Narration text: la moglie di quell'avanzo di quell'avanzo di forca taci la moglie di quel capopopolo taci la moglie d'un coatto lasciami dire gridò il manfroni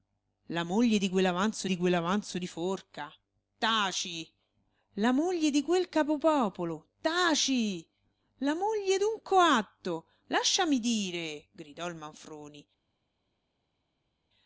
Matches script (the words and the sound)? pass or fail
pass